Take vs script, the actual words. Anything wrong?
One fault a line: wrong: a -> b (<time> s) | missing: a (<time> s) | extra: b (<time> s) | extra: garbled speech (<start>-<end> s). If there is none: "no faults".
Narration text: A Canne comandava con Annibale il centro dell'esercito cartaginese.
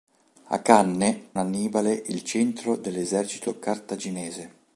missing: comandava con (1.3 s)